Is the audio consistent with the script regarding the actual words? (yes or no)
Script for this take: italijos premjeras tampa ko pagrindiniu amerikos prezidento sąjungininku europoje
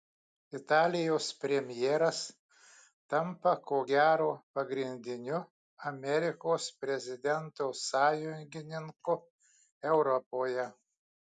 no